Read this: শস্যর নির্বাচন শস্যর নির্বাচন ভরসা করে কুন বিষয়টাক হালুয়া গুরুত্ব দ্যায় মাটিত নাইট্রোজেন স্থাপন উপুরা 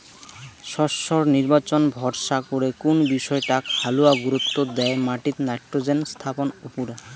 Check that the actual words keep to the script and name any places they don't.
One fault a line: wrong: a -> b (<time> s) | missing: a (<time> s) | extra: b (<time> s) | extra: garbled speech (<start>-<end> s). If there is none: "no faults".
missing: শস্যর নির্বাচন (1.8 s)